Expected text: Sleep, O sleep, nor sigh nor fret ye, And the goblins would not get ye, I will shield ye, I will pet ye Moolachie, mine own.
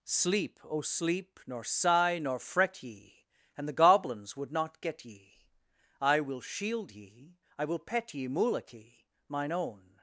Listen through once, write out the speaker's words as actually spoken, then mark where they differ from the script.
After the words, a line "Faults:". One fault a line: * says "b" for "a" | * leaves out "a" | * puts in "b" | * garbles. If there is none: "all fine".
Sleep, O sleep, nor sigh nor fret ye, And the goblins would not get ye, I will shield ye, I will pet ye Moolachie, mine own.
Faults:
all fine